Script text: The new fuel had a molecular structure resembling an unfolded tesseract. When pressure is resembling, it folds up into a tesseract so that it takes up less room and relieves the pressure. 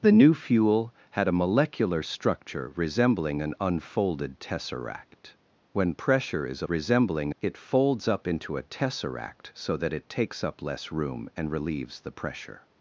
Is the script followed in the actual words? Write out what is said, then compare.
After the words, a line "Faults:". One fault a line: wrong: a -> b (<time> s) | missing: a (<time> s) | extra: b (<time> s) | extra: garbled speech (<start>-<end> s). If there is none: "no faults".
The new fuel had a molecular structure resembling an unfolded tesseract. When pressure is resembling, it folds up into a tesseract so that it takes up less room and relieves the pressure.
Faults:
no faults